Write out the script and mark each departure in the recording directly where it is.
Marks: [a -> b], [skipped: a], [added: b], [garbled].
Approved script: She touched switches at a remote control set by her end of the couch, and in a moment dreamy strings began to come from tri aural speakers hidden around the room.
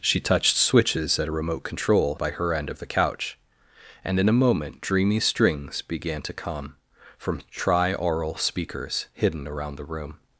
She touched switches at a remote control [skipped: set] by her end of the couch, and in a moment dreamy strings began to come from tri aural speakers hidden around the room.